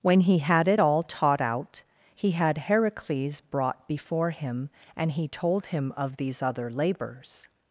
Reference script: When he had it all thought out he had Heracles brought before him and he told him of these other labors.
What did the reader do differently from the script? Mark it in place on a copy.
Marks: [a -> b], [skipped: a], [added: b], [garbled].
When he had it all [thought -> taught] out he had Heracles brought before him and he told him of these other labors.